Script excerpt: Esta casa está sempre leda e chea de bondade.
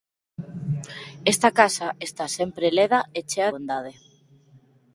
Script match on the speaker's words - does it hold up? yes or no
no